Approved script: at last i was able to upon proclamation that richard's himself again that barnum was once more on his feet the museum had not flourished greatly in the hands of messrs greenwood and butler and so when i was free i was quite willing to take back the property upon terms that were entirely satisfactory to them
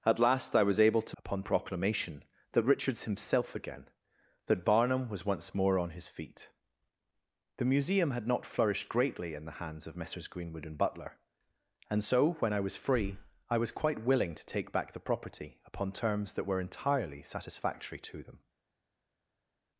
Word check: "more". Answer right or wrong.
right